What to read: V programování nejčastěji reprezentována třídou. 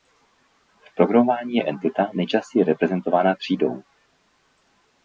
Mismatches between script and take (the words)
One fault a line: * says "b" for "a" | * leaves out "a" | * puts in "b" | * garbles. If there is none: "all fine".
* puts in "je entita"